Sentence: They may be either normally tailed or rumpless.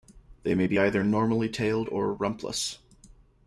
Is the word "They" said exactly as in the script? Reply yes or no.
yes